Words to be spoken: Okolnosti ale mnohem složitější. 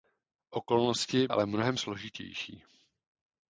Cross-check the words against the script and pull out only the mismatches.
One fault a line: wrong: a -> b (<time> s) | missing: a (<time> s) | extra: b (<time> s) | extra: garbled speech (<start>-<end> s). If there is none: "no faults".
no faults